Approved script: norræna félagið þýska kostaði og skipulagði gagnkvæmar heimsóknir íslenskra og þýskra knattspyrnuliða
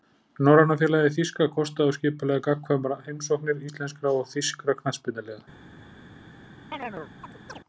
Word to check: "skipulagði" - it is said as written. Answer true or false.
true